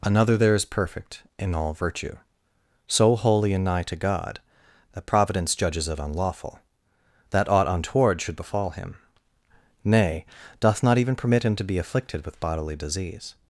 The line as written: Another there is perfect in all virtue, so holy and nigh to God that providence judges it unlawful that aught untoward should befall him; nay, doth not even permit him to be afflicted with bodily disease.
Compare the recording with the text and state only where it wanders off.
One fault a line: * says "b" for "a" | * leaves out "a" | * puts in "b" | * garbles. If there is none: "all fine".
all fine